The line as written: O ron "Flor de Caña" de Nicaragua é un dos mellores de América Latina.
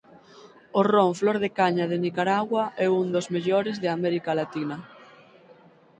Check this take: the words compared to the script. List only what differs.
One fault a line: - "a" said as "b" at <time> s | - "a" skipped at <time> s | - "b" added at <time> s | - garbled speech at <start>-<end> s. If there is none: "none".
none